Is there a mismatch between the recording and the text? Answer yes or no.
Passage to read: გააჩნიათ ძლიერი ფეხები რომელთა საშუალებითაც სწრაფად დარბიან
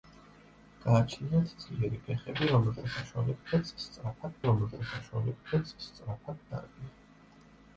yes